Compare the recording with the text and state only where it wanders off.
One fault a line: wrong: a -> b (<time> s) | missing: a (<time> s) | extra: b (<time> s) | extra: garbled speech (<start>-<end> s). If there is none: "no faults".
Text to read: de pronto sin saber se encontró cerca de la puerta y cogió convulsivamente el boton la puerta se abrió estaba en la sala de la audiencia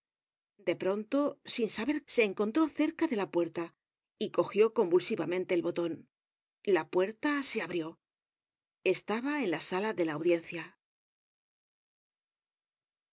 no faults